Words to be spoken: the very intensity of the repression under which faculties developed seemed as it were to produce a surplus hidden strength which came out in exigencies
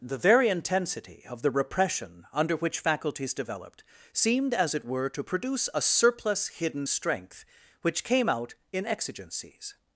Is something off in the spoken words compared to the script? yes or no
no